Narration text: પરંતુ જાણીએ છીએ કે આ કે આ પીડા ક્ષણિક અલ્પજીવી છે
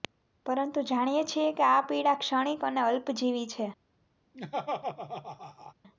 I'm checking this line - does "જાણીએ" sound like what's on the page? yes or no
yes